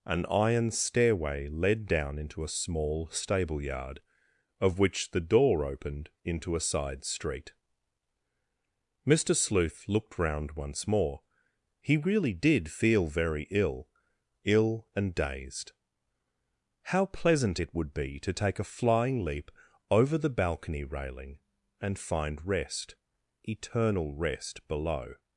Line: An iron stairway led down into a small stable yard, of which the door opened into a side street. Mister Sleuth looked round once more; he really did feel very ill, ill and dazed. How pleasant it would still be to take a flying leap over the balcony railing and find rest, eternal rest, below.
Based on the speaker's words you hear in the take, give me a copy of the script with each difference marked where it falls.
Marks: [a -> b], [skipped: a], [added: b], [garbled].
An iron stairway led down into a small stable yard, of which the door opened into a side street. Mister Sleuth looked round once more; he really did feel very ill, ill and dazed. How pleasant it would [skipped: still] be to take a flying leap over the balcony railing and find rest, eternal rest, below.